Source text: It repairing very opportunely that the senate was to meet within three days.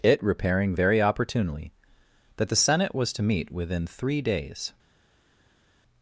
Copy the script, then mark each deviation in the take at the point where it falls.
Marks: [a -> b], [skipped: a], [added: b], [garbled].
It repairing very opportunely that the senate was to meet within three days.